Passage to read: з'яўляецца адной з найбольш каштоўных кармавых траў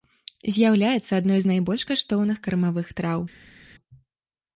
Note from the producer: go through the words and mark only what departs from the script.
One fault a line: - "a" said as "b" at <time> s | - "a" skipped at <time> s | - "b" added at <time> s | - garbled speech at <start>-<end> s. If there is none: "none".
none